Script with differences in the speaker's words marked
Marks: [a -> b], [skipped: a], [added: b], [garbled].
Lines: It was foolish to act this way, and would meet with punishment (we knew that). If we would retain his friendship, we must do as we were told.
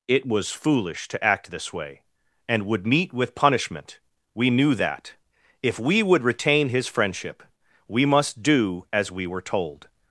It was foolish to act this way, and would meet with punishment (we knew that). If we would retain his friendship, we must do as we were told.